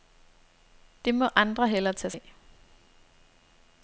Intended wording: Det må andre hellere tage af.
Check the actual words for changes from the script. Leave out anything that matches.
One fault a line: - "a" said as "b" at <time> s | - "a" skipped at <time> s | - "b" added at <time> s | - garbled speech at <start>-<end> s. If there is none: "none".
none